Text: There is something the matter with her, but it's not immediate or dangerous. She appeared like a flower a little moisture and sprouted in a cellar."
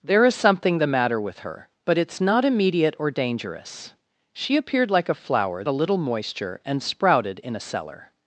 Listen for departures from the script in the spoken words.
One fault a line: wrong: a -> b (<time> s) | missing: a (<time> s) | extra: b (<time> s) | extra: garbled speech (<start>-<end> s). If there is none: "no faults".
no faults